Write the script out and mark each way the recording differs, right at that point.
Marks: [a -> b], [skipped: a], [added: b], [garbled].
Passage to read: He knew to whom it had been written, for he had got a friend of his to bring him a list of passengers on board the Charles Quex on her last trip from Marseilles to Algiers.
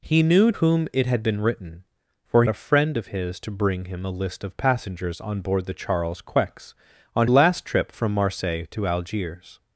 He knew [skipped: to] whom it had been written, for [skipped: he had got] a friend of his to bring him a list of passengers on board the Charles Quex on [skipped: her] last trip from Marseilles to Algiers.